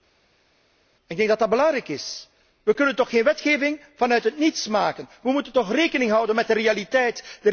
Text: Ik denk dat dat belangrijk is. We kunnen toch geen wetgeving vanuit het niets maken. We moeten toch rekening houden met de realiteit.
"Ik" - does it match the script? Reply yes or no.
yes